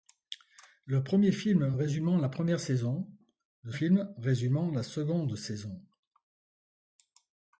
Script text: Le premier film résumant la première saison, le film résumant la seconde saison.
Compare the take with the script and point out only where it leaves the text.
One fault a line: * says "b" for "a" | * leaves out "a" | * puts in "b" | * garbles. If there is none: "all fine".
all fine